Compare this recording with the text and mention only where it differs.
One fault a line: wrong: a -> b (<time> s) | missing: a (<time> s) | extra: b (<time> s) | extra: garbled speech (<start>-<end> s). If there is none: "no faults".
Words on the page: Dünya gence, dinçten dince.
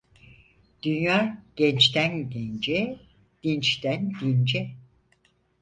extra: gençten (1.6 s)